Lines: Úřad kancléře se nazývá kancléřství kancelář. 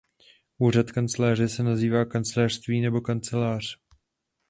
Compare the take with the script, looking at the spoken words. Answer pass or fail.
fail